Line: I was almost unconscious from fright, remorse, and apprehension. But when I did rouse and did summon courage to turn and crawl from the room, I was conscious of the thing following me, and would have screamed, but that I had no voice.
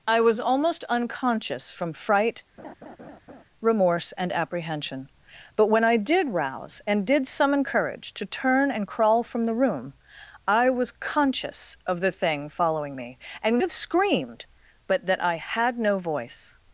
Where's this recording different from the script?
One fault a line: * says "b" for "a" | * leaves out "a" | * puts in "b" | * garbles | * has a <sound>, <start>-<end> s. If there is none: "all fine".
* has a laugh, 2.6-3.4 s
* leaves out "would"